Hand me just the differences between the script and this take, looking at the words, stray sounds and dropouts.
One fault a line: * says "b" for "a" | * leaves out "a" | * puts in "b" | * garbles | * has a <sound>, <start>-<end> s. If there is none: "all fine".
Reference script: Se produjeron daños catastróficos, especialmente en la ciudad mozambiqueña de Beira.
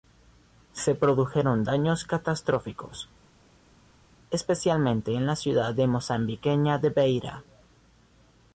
all fine